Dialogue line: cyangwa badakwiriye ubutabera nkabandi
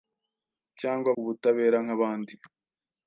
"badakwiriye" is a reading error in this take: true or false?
true